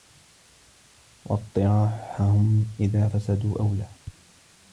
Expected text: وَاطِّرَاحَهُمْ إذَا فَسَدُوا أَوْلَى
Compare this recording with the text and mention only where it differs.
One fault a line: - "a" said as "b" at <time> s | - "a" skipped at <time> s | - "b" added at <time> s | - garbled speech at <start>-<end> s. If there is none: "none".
none